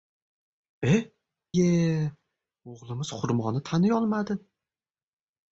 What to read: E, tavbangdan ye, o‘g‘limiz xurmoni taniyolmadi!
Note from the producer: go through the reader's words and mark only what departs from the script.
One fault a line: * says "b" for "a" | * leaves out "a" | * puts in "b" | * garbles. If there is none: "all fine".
* leaves out "tavbangdan"